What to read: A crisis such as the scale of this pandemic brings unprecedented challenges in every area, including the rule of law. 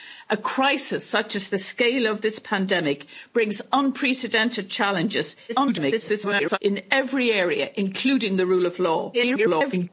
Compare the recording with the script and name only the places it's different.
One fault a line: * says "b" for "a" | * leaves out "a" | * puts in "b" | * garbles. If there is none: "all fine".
* garbles
* garbles